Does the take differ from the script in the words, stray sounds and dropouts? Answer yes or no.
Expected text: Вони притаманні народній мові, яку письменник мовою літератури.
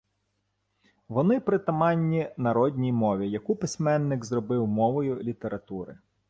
yes